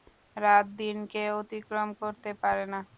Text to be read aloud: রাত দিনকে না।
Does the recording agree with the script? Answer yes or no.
no